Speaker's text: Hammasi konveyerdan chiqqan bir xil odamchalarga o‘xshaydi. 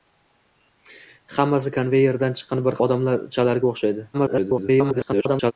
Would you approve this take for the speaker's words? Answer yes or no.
no